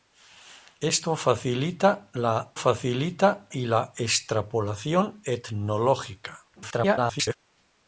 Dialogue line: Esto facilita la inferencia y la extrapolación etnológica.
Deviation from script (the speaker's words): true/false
true